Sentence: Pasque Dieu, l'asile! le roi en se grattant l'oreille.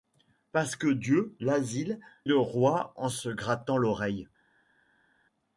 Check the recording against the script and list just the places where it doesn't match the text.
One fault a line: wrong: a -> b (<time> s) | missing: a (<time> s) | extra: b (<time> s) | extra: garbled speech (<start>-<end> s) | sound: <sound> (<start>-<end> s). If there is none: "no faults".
no faults